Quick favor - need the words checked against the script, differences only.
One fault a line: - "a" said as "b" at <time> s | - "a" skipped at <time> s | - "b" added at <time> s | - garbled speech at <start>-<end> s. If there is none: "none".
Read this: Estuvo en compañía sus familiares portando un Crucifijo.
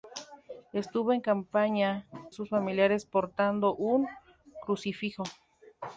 none